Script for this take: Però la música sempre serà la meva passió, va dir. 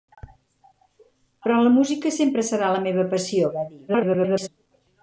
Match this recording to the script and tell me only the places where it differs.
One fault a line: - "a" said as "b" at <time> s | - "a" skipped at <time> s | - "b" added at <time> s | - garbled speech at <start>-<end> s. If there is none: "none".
- garbled speech at 3.9-4.5 s